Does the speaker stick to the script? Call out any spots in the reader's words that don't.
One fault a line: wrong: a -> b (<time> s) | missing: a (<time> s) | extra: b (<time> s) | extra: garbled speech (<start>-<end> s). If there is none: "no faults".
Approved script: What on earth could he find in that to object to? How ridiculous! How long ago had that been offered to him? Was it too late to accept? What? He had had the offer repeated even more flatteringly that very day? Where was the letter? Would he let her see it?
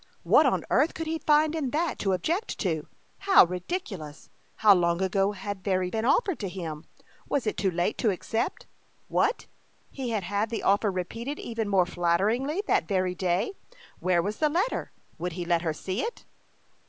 wrong: that -> very (5.6 s)